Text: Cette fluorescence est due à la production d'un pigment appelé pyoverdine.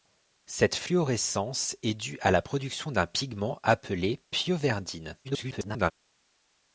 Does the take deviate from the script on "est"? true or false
false